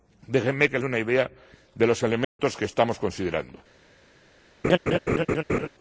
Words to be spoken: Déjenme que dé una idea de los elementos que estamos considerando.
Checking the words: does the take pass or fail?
pass